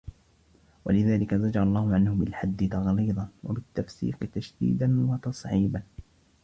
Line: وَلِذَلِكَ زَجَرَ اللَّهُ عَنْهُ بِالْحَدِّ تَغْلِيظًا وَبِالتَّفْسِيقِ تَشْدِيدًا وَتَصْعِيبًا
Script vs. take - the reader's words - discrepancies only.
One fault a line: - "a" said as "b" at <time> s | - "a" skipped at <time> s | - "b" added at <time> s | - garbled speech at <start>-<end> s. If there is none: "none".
none